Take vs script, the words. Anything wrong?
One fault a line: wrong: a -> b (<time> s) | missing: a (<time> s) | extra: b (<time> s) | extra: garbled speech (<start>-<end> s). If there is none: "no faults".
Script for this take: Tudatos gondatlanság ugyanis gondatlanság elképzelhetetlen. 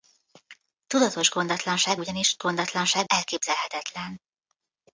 no faults